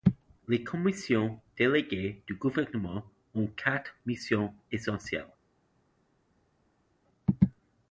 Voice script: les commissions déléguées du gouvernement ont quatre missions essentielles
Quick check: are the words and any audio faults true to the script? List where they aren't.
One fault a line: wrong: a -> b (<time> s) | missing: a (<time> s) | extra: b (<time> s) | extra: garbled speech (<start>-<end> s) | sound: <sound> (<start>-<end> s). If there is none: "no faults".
no faults